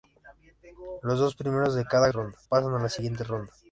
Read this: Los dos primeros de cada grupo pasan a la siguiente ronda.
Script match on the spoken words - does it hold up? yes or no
no